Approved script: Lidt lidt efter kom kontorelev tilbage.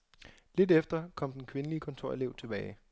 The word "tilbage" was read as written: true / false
true